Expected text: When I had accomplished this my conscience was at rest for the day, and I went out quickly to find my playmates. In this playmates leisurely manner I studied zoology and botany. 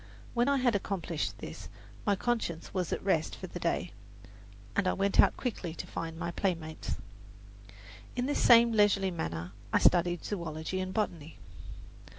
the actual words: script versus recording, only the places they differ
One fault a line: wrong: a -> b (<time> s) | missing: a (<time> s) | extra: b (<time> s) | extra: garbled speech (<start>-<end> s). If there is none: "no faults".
wrong: playmates -> same (8.4 s)